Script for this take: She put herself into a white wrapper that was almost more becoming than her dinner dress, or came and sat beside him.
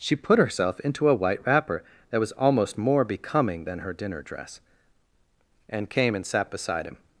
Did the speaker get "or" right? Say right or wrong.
wrong